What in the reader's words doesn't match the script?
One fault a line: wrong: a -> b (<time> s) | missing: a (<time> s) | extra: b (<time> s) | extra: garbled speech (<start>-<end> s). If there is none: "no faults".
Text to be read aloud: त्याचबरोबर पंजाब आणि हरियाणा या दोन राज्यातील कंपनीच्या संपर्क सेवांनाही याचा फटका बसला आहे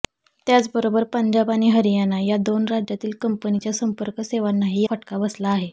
missing: याचा (4.8 s)